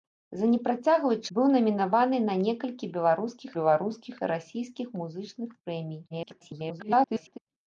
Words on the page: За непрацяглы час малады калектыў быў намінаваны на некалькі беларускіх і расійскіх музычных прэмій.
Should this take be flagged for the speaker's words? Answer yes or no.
yes